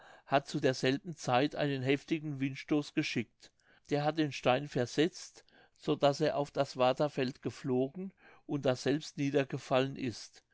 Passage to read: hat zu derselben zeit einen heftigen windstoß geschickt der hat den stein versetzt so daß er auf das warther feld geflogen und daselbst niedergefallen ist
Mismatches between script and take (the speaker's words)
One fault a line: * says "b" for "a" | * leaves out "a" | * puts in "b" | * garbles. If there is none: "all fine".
all fine